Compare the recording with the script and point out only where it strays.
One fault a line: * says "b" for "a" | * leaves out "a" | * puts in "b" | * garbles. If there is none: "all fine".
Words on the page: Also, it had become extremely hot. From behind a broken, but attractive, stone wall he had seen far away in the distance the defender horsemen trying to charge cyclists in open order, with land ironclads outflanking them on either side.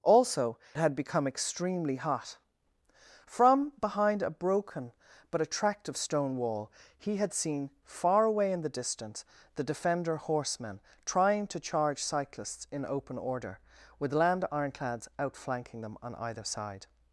* leaves out "it"